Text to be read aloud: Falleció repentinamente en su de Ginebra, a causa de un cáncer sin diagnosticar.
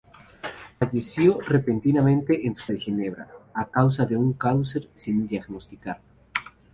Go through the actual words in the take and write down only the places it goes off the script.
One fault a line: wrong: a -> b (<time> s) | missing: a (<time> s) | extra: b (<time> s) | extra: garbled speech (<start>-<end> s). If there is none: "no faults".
no faults